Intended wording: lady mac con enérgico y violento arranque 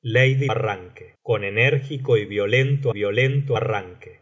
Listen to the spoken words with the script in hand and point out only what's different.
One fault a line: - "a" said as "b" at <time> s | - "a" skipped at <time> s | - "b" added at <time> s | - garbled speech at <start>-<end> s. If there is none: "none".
- "mac" said as "arranque" at 0.5 s
- "violento" added at 2.9 s